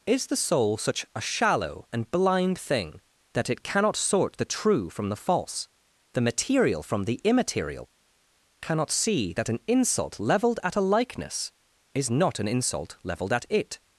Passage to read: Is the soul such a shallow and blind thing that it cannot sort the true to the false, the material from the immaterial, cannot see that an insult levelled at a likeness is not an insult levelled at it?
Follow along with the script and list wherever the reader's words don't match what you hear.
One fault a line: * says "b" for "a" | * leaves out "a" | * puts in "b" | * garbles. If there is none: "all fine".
* says "from" for "to"